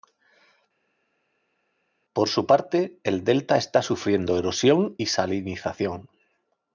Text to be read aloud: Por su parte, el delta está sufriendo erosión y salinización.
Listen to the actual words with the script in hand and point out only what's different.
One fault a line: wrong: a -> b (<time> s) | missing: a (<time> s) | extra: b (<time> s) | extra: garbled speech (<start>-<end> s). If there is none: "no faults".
no faults